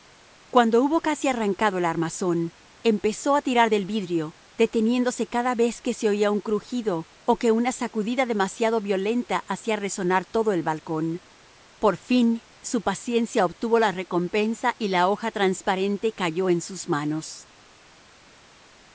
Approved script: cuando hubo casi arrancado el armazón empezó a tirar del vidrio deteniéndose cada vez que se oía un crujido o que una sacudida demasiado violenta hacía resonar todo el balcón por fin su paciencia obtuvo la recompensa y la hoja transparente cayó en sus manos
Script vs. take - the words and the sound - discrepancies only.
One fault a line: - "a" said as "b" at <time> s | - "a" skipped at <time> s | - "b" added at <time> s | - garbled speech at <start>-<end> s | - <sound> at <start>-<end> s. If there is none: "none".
none